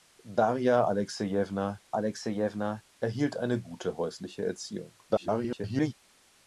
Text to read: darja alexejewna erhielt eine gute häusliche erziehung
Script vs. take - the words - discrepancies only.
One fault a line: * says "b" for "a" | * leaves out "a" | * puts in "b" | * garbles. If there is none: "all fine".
* puts in "alexejewna"
* garbles